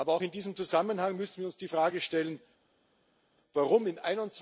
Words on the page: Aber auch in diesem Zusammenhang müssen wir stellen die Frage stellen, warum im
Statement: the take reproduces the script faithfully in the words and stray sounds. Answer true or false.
false